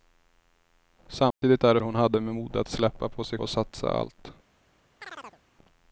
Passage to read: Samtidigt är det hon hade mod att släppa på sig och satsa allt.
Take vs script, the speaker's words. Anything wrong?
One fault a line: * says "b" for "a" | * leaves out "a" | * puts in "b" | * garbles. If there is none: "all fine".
all fine